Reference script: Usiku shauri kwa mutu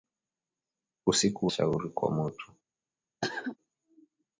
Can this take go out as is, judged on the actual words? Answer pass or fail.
pass